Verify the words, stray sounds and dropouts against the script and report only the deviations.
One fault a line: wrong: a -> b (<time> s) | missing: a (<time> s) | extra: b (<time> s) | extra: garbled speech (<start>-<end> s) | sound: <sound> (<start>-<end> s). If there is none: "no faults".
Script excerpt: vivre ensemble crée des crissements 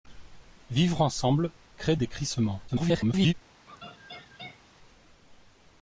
extra: garbled speech (2.7-3.3 s)
sound: laugh (3.7-4.6 s)